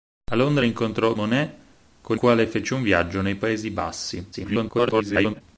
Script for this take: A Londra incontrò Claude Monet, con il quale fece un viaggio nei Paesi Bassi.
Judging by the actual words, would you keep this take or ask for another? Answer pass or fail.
fail